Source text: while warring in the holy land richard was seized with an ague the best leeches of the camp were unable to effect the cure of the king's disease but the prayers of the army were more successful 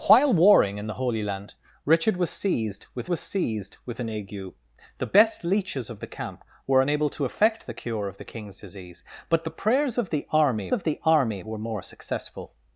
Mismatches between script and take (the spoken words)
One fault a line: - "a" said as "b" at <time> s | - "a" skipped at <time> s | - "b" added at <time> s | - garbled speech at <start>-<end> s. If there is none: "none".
- "was seized with" added at 3.1 s
- "of the army" added at 10.7 s